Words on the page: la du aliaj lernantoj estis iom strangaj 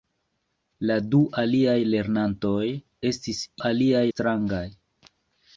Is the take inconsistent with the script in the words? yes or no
yes